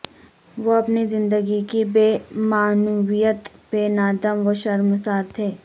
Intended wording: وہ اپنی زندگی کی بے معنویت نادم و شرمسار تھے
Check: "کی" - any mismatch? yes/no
no